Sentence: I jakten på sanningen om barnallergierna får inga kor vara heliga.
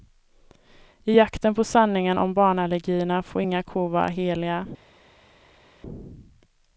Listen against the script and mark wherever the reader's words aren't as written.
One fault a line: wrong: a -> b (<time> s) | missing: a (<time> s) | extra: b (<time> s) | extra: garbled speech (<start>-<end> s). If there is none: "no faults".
no faults